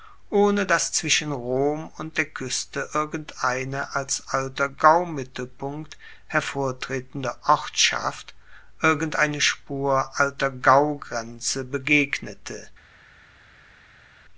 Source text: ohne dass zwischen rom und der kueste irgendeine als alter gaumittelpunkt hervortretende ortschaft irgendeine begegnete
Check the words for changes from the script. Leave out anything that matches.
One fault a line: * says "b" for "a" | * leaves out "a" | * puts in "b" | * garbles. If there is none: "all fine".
* puts in "spur alter gaugrenze"